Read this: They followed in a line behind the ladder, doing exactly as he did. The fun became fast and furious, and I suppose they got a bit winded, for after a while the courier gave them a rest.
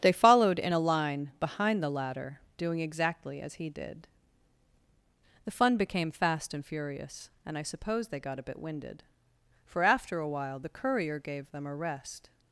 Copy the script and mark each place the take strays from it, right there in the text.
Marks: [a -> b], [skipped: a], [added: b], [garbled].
They followed in a line behind the ladder, doing exactly as he did. The fun became fast and furious, and I suppose they got a bit winded, for after a while the courier gave them a rest.